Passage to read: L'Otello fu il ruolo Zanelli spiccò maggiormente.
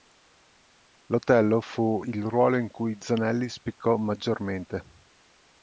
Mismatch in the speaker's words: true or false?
true